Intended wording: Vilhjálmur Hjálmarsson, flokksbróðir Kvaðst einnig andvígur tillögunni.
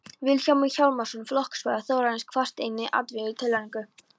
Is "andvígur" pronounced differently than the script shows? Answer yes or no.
no